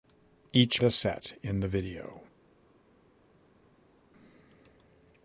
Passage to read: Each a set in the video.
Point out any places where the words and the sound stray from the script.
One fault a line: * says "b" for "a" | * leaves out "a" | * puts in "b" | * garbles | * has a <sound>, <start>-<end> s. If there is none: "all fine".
all fine